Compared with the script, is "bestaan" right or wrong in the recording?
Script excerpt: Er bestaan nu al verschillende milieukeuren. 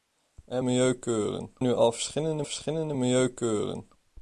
wrong